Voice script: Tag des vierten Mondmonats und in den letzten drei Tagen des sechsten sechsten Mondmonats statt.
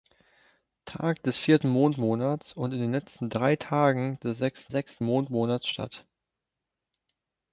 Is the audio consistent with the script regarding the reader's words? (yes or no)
yes